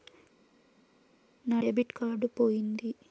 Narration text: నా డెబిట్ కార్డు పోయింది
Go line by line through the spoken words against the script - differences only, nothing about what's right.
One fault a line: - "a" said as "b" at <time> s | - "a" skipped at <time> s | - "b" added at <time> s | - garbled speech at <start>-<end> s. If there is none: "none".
none